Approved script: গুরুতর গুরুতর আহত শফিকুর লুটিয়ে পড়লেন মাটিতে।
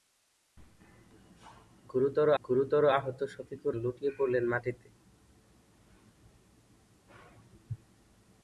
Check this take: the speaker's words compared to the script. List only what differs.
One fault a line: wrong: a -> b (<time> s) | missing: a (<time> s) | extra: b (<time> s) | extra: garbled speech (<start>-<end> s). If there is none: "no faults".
no faults